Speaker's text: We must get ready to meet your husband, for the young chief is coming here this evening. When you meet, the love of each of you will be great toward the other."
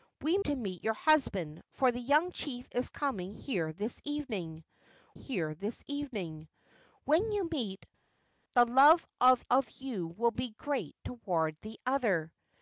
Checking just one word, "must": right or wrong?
wrong